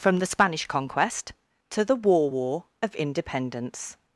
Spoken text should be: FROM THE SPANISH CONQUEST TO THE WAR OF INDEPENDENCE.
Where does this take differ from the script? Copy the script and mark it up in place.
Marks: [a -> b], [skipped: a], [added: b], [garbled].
FROM THE SPANISH CONQUEST TO THE WAR [added: WAR] OF INDEPENDENCE.